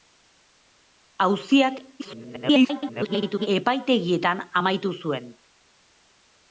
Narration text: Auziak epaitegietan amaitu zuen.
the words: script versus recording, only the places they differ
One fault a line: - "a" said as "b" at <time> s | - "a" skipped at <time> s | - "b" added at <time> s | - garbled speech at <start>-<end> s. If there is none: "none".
- garbled speech at 2.0-3.5 s